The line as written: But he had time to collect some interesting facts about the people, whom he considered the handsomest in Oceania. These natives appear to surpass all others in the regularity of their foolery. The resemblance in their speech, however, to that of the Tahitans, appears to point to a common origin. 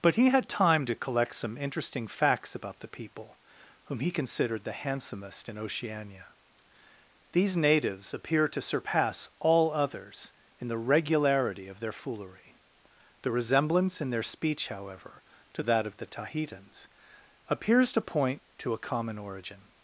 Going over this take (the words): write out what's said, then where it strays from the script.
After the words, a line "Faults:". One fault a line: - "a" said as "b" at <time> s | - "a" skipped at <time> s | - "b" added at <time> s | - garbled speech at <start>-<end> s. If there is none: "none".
But he had time to collect some interesting facts about the people, whom he considered the handsomest in Oceania. These natives appear to surpass all others in the regularity of their foolery. The resemblance in their speech, however, to that of the Tahitans, appears to point to a common origin.
Faults:
none